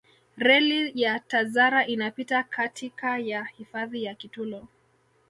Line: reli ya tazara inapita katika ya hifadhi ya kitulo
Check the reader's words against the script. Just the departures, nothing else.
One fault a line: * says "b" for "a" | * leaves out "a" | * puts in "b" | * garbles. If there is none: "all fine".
all fine